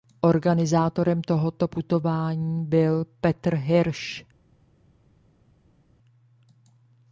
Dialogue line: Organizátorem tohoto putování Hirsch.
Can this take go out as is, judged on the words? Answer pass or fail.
fail